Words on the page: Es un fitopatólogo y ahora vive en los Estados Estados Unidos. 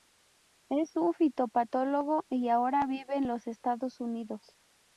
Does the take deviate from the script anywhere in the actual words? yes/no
yes